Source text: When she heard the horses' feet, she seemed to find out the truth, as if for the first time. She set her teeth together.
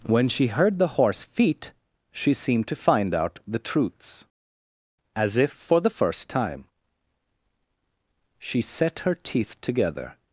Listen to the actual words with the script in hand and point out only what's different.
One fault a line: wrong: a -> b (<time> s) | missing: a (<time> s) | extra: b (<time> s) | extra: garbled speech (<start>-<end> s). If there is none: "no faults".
wrong: horses -> horse (1.0 s)
wrong: truth -> truths (3.6 s)